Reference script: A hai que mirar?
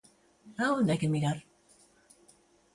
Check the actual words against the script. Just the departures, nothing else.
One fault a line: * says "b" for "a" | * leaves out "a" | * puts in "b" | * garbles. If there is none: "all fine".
* puts in "onde"